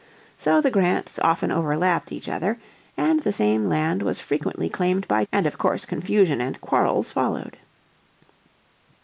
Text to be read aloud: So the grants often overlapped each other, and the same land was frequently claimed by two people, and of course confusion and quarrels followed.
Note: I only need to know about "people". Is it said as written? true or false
false